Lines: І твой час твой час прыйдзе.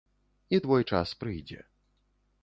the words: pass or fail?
fail